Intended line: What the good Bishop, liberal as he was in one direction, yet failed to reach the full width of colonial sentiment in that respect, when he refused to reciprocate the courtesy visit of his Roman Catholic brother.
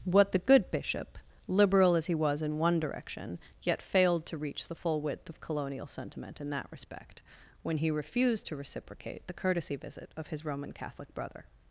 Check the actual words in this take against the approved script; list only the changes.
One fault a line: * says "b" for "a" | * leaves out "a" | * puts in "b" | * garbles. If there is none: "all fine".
all fine